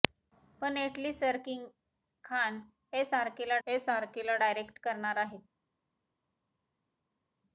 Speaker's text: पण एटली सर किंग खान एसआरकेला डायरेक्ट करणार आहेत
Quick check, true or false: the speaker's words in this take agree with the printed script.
false